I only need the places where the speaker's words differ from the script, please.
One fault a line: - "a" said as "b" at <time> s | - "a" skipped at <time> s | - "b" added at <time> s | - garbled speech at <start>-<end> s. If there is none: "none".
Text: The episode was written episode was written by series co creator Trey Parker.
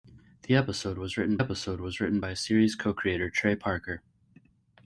none